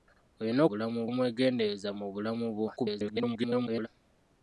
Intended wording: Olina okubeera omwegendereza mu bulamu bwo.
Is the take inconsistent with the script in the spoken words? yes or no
yes